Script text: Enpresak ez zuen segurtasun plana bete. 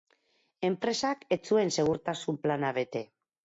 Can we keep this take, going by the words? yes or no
yes